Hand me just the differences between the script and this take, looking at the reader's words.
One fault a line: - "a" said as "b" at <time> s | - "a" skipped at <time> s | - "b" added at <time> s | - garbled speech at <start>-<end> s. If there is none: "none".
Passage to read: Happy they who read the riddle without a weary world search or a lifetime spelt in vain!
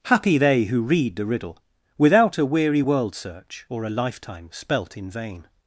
none